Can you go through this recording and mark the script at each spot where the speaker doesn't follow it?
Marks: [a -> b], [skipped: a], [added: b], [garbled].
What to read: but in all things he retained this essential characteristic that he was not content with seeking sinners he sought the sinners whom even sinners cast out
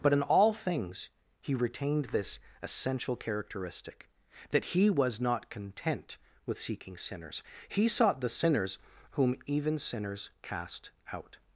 but in all things he retained this essential characteristic that he was not content with seeking sinners he sought the sinners whom even sinners cast out